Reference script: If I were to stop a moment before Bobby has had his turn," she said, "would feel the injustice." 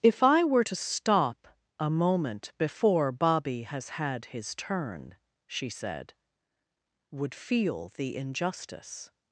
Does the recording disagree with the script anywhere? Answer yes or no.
no